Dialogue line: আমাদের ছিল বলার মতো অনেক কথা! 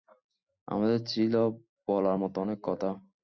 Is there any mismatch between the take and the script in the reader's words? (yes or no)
no